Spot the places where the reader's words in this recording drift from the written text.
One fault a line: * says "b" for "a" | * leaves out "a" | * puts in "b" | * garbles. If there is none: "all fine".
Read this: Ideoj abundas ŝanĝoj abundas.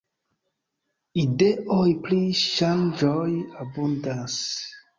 * says "pri" for "abundas"